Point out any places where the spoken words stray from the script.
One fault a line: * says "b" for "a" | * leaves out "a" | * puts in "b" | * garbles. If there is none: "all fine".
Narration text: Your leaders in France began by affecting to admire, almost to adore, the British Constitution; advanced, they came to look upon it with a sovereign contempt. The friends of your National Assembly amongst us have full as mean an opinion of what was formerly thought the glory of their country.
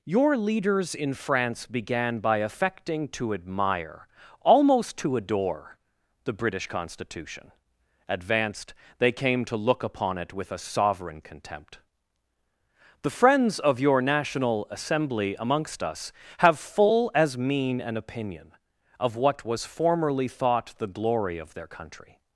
all fine